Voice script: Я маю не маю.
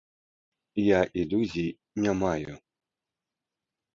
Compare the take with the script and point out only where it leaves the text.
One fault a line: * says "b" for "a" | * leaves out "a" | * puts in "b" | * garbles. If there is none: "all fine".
* says "ілюзій" for "маю"